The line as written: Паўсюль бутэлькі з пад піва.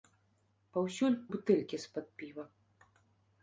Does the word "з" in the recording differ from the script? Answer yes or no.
no